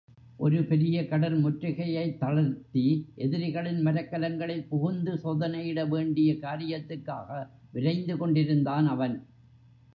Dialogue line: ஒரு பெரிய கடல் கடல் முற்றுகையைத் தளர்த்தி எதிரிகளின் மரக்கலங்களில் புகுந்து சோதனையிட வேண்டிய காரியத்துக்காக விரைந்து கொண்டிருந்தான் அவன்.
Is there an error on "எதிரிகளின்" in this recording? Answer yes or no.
no